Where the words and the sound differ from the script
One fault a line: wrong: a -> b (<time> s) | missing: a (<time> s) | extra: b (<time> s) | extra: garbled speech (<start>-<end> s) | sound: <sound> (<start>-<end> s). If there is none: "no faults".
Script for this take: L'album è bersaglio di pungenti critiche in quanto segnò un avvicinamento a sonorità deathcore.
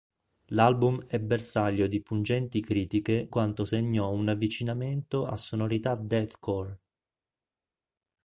missing: in (3.3 s)